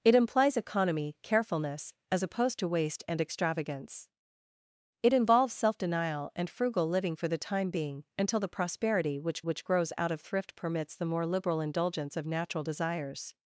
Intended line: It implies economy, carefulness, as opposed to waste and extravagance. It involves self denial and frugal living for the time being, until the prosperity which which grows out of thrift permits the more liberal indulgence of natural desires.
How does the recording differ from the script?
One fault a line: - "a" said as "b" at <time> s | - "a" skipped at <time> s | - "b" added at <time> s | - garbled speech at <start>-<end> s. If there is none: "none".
none